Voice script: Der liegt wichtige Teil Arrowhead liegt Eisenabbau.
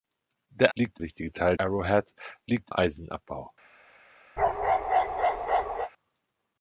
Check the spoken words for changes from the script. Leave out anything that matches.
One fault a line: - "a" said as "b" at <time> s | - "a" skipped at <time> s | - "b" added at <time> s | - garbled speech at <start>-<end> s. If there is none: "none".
none